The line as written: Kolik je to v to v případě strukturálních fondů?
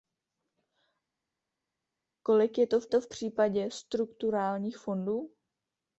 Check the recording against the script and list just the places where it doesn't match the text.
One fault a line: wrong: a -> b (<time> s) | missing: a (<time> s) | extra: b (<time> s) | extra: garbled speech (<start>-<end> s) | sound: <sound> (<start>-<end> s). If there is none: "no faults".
no faults